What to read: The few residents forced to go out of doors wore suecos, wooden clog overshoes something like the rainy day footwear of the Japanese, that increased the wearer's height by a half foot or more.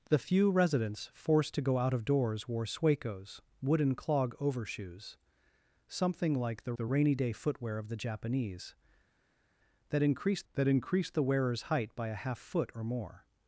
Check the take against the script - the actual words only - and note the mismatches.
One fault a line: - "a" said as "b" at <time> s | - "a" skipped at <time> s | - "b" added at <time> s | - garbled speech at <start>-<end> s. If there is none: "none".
- "the" added at 6.8 s
- "that increased" added at 10.5 s